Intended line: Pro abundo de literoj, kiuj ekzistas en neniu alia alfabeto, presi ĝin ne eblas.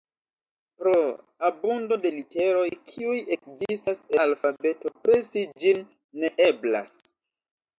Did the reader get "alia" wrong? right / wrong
wrong